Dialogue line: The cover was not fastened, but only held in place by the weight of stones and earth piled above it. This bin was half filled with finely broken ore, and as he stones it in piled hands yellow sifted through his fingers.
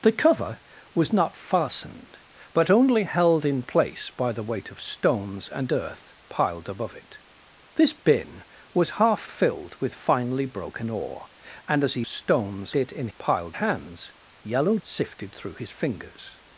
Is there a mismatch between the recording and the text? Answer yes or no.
no